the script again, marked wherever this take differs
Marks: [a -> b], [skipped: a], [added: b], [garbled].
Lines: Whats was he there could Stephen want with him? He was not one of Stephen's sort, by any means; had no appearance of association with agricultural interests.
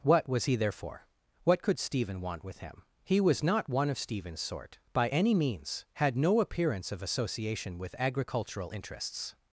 [Whats -> What] was he there [added: for What] could Stephen want with him? He was not one of Stephen's sort, by any means; had no appearance of association with agricultural interests.